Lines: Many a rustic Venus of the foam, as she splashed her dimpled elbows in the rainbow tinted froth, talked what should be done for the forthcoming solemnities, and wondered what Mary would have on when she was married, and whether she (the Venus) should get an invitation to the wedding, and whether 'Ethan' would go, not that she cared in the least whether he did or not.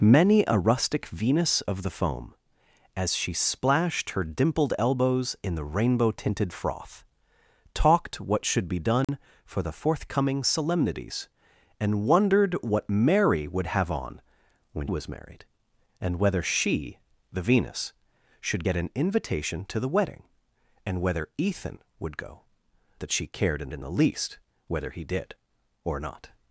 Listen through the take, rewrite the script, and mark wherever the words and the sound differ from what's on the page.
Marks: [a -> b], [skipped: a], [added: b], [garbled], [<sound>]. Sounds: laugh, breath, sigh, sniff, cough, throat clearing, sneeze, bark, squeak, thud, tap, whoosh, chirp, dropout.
Many a rustic Venus of the foam, as she splashed her dimpled elbows in the rainbow tinted froth, talked what should be done [dropout] for the forthcoming solemnities, and wondered what Mary would have on when [skipped: she] was married, and whether she (the Venus) should get an invitation to the wedding, and whether 'Ethan' would go, [skipped: not] that she cared in [added: in] the least whether he did or not.